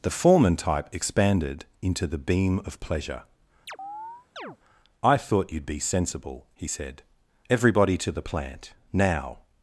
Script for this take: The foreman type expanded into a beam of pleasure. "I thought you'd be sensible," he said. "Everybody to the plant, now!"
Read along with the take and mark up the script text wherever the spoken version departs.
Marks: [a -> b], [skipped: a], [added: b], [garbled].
The foreman type expanded into [a -> the] beam of pleasure. "I thought you'd be sensible," he said. "Everybody to the plant, now!"